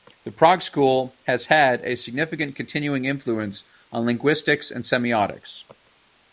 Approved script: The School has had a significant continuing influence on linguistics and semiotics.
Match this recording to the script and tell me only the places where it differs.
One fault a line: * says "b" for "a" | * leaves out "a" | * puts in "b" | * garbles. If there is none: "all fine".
* puts in "Prague"